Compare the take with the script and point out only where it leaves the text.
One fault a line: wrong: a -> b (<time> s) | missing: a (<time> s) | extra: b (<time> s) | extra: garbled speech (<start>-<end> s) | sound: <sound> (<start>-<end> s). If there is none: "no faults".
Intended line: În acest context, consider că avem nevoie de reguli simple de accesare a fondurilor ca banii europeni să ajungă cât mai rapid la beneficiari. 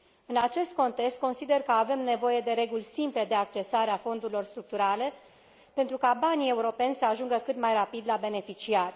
extra: structurale pentru (4.4 s)